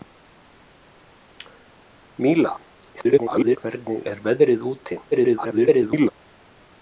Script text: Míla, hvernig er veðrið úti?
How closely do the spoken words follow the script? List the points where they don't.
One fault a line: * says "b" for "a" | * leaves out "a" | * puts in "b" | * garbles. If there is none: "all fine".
* garbles
* garbles